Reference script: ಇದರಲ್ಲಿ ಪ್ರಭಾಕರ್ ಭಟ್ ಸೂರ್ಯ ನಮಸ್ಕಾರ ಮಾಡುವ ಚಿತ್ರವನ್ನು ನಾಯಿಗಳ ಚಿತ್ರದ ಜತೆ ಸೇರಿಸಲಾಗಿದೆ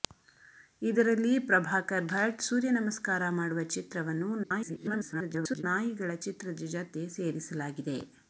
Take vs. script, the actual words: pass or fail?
fail